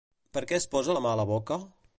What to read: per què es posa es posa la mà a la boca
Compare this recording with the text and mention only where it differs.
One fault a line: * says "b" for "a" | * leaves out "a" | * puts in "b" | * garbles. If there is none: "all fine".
* leaves out "es posa"